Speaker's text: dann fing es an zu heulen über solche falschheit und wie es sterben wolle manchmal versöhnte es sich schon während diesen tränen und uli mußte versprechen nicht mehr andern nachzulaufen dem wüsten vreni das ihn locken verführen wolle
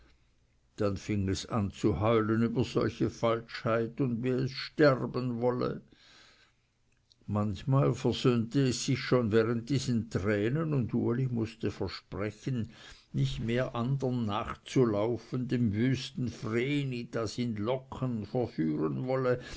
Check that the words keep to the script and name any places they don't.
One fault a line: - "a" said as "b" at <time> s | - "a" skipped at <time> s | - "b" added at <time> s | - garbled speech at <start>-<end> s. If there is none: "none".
none